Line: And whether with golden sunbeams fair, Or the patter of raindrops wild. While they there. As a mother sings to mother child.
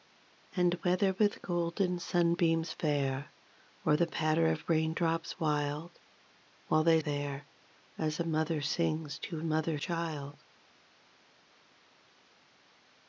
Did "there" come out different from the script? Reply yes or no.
no